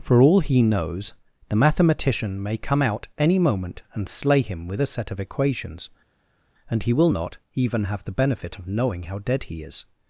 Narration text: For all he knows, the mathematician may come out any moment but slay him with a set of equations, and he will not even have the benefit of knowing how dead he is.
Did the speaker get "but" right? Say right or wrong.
wrong